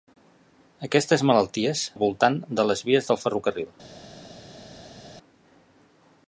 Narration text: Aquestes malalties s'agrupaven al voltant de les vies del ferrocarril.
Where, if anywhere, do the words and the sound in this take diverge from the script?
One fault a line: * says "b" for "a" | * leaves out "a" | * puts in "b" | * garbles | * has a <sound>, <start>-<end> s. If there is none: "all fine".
* leaves out "s'agrupaven"